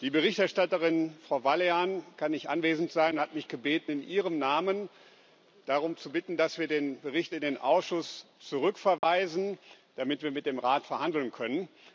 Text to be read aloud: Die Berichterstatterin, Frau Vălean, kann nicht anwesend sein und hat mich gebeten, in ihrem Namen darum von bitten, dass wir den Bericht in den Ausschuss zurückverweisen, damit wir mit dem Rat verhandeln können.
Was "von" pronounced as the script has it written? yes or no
no